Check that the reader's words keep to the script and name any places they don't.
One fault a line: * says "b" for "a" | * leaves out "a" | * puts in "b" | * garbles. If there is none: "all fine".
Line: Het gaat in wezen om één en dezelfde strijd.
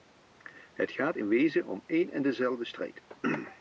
all fine